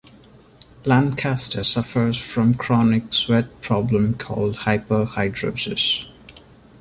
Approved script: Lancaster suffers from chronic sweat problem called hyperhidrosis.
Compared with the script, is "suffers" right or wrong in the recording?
right